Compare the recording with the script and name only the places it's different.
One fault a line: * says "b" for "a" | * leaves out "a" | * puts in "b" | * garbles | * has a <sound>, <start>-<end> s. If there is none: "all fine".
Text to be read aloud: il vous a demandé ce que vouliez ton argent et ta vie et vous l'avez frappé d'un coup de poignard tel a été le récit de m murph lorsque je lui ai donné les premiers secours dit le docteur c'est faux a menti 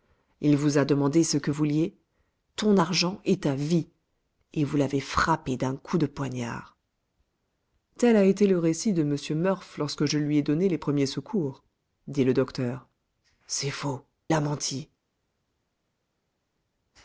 all fine